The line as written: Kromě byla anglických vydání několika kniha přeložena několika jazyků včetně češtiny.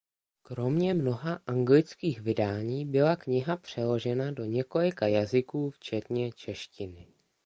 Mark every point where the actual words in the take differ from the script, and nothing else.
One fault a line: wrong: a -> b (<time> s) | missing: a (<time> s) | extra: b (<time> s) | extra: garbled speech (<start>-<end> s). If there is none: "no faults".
wrong: byla -> mnoha (0.9 s)
wrong: několika -> byla (2.8 s)
extra: do (4.3 s)